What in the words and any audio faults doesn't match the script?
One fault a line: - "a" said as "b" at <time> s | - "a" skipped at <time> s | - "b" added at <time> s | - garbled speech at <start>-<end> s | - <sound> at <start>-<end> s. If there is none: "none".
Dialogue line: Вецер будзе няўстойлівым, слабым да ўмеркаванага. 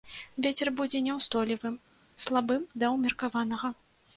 none